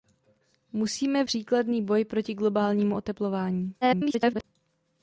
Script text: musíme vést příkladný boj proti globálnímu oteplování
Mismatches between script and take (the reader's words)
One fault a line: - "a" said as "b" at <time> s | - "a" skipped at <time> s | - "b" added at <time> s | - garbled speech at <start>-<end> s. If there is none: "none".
- "vést" skipped at 1.2 s
- garbled speech at 3.8-4.4 s